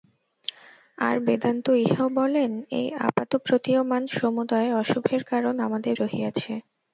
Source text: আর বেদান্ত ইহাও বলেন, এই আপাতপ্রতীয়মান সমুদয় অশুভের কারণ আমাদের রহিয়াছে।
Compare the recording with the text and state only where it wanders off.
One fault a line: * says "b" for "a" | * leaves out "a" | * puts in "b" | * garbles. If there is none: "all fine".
all fine